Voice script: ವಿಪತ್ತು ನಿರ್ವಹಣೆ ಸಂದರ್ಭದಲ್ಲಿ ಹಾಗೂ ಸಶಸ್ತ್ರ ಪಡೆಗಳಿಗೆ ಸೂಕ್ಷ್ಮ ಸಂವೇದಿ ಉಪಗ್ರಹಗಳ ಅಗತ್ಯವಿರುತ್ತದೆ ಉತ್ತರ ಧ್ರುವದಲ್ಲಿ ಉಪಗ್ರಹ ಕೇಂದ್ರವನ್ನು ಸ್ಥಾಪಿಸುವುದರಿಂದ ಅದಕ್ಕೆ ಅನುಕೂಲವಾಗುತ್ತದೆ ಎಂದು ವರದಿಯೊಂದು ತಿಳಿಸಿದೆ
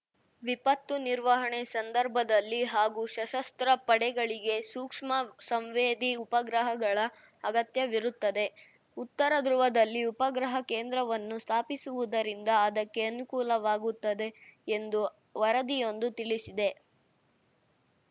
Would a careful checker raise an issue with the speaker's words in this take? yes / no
no